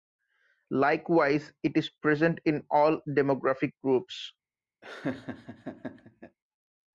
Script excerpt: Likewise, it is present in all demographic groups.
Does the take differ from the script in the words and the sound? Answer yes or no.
yes